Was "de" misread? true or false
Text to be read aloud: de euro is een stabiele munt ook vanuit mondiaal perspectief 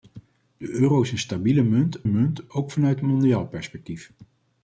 false